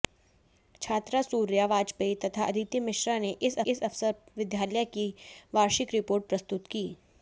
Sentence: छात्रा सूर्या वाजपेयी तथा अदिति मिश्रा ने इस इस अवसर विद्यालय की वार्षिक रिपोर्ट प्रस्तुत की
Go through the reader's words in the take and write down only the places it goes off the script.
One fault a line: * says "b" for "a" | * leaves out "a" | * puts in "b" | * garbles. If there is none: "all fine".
all fine